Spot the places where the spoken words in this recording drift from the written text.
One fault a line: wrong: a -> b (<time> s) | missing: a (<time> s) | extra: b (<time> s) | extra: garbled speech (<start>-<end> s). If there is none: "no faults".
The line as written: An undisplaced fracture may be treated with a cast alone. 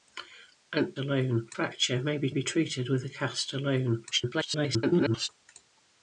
wrong: undisplaced -> alone (1.0 s)
extra: be (2.3 s)
extra: garbled speech (4.1-5.3 s)